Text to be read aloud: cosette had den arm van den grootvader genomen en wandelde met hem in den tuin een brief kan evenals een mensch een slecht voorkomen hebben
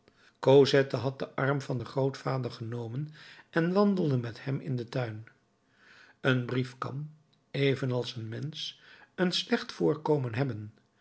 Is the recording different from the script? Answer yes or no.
no